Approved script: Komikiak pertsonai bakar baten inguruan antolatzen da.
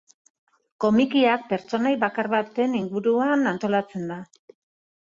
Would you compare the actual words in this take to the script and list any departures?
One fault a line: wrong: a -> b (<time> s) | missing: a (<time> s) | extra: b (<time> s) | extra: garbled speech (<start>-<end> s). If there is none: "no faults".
no faults